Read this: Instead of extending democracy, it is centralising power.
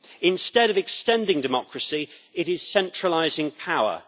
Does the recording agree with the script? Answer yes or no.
yes